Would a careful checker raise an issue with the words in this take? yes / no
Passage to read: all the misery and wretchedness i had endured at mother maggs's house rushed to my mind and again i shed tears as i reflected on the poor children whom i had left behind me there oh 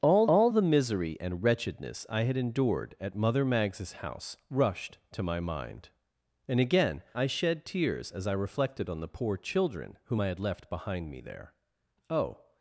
yes